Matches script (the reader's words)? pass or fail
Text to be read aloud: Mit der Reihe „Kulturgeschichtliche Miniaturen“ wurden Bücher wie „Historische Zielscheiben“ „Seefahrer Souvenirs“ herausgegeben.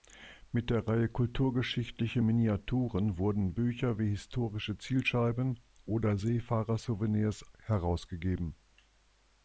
fail